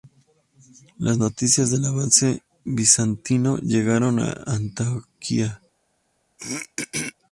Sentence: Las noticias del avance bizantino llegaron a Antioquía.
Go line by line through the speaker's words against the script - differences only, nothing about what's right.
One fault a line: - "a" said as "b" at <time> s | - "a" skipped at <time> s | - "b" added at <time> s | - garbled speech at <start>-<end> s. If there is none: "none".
none